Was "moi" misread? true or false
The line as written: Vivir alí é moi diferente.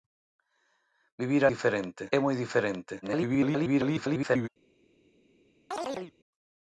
false